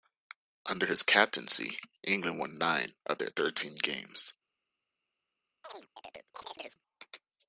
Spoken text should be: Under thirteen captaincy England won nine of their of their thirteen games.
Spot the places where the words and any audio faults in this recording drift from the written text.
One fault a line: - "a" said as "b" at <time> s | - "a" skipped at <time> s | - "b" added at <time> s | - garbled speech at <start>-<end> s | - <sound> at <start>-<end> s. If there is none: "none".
- "thirteen" said as "his" at 0.9 s
- "of their" skipped at 3.3 s
- chirp at 5.6-6.8 s